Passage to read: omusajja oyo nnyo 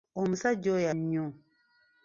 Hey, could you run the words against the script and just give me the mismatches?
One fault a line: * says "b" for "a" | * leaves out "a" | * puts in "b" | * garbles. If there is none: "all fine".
all fine